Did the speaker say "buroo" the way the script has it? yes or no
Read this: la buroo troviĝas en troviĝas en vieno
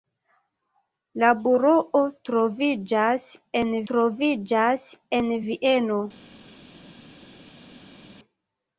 yes